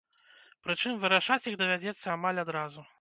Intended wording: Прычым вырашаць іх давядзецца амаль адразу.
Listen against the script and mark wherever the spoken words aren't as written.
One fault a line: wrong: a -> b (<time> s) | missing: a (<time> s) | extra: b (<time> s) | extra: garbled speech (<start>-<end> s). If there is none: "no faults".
no faults